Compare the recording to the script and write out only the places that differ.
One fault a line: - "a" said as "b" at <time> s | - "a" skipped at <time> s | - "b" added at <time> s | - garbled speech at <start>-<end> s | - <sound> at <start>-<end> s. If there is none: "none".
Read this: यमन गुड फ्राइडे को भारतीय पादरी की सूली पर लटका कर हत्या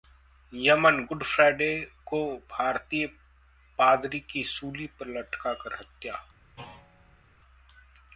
- thud at 6.6-7.2 s